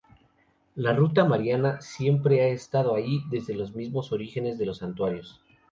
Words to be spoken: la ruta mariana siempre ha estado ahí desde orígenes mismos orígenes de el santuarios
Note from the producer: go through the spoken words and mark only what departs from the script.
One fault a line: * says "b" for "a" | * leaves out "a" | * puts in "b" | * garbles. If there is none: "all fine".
* says "los" for "orígenes"
* says "los" for "el"